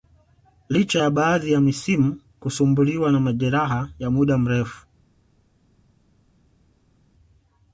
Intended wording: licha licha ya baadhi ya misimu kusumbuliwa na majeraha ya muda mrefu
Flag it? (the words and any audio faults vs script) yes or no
yes